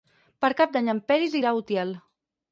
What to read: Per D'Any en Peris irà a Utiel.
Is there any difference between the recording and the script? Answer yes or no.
yes